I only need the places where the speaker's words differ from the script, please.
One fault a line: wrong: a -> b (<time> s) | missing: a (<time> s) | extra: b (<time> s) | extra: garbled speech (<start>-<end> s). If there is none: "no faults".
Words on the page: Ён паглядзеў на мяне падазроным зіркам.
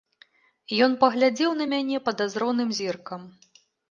no faults